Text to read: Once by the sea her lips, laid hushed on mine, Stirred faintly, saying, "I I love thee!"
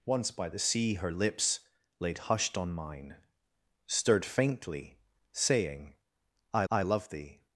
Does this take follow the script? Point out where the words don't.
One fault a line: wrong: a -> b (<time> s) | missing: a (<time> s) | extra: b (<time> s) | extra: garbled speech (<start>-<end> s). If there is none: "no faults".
no faults